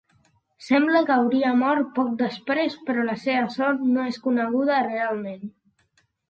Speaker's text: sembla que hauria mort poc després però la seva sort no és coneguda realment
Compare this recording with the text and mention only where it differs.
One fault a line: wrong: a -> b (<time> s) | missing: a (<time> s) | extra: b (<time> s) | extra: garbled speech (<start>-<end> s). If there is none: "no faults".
no faults